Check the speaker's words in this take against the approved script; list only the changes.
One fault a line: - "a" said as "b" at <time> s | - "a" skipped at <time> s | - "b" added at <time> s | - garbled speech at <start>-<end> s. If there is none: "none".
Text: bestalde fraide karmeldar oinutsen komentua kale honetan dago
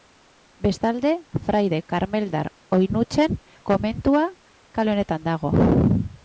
none